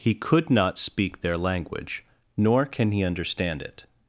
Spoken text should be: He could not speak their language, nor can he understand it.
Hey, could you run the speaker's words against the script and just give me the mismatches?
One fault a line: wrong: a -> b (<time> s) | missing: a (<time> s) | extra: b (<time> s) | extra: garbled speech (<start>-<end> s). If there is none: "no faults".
no faults